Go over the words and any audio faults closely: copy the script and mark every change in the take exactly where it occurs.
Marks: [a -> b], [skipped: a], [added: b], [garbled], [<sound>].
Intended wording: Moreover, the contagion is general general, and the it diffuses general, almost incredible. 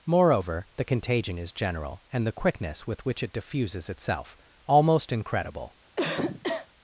Moreover, the contagion is general [skipped: general,] and the [added: quickness with which] it diffuses [general, -> itself] almost incredible. [cough]